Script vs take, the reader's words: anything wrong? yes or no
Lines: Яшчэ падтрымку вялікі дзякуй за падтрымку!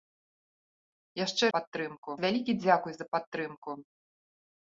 no